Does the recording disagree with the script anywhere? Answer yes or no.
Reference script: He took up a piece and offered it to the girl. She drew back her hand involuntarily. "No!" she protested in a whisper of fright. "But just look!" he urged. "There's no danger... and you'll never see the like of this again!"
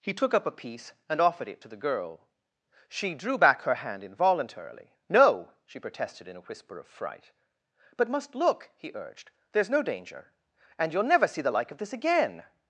yes